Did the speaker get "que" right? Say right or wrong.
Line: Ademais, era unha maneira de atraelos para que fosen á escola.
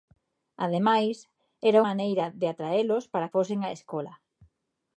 wrong